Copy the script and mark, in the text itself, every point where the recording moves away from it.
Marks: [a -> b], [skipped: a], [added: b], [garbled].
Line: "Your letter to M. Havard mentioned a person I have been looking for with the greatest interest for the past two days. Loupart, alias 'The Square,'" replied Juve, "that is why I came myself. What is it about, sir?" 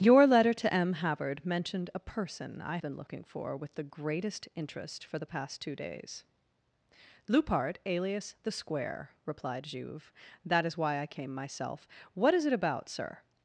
"Your letter to M. Havard mentioned a person I [skipped: have] been looking for with the greatest interest for the past two days. Loupart, alias 'The Square,'" replied Juve, "that is why I came myself. What is it about, sir?"